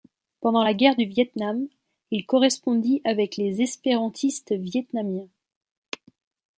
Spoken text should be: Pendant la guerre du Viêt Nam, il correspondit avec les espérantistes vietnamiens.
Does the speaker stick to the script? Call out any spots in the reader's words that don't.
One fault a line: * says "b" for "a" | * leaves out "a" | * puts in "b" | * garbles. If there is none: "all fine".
all fine